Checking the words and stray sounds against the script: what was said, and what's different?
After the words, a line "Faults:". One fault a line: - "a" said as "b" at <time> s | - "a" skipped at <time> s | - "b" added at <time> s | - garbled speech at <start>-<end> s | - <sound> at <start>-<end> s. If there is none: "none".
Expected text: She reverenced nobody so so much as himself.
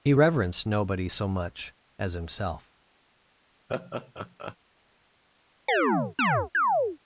He reverenced nobody so much as himself.
Faults:
- "She" said as "He" at 0.0 s
- "so" skipped at 1.3 s
- laugh at 3.7-4.6 s
- chirp at 5.7-7.0 s